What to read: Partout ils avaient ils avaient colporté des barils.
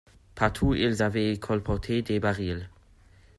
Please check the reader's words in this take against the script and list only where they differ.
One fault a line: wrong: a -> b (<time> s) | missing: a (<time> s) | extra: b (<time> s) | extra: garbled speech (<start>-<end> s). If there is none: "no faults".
missing: ils avaient (1.4 s)